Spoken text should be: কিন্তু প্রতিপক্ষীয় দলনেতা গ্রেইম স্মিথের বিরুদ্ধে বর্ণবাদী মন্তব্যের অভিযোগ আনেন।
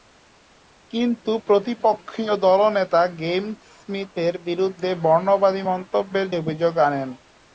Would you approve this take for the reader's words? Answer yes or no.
yes